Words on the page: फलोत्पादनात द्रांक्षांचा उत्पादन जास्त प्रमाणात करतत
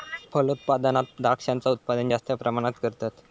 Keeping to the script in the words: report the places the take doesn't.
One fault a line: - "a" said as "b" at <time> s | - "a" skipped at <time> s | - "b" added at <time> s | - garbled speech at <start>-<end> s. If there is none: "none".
none